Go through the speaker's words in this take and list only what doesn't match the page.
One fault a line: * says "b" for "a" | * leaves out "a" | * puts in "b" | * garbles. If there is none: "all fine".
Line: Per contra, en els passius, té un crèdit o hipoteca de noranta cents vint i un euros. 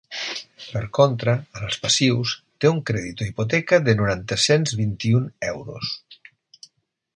all fine